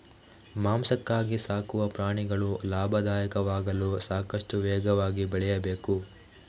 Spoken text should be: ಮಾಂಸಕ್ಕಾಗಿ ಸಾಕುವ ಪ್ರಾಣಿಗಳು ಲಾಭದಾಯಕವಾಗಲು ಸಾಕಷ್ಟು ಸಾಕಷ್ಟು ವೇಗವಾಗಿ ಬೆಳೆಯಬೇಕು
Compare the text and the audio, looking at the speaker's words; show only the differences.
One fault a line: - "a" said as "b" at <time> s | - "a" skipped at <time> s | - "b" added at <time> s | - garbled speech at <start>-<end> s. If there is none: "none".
- "ಸಾಕಷ್ಟು" skipped at 4.6 s